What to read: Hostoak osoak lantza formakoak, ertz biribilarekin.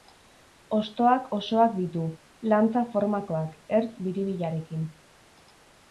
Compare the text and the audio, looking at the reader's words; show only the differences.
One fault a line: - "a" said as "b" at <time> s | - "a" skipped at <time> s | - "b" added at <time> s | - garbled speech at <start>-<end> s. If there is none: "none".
- "ditu" added at 1.8 s